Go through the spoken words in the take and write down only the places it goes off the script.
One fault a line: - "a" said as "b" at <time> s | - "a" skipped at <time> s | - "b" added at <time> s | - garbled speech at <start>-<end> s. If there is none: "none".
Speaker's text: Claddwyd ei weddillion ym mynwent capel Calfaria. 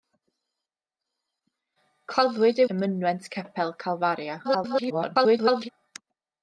- "weddillion" skipped at 2.7 s
- garbled speech at 4.4-5.7 s